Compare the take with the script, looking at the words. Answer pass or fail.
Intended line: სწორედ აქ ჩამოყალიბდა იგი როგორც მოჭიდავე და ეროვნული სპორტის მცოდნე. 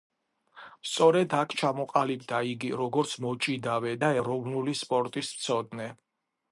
pass